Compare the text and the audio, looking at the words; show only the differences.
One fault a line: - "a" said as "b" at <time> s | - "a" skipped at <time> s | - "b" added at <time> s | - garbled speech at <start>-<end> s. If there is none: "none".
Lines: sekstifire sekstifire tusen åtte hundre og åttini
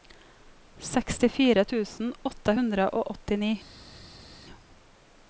- "sekstifire" skipped at 1.6 s